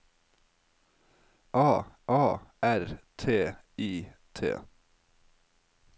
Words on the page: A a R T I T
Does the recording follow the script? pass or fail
pass